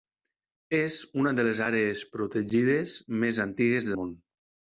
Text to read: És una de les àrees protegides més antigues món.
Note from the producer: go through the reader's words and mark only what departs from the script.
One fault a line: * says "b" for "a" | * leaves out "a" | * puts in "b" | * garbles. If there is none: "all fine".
all fine